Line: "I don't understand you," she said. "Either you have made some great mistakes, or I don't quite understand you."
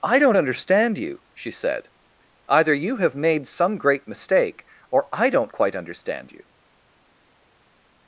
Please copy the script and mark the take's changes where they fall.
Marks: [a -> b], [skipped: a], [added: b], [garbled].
"I don't understand you," she said. "Either you have made some great [mistakes, -> mistake] or I don't quite understand you."